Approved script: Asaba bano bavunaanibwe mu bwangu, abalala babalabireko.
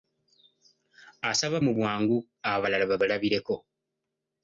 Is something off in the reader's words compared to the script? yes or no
yes